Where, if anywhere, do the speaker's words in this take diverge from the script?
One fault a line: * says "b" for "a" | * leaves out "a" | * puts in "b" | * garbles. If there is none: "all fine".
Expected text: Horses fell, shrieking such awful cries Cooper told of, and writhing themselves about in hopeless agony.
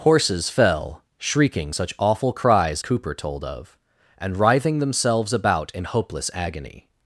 all fine